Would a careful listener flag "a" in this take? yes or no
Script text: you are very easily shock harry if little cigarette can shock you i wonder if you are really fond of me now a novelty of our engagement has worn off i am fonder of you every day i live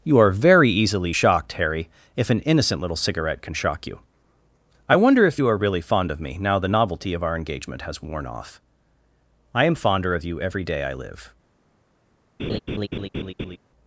yes